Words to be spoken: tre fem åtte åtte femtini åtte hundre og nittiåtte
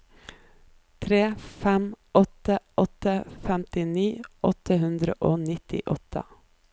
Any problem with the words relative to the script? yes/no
no